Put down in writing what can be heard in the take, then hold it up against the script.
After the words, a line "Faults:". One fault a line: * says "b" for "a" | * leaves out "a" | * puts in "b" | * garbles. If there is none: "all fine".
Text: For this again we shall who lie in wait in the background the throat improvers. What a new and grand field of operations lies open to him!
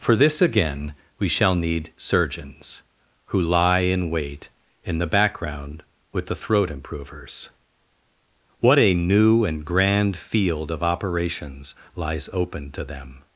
For this again we shall need surgeons, who lie in wait in the background with the throat improvers. What a new and grand field of operations lies open to them!
Faults:
* puts in "need surgeons"
* puts in "with"
* says "them" for "him"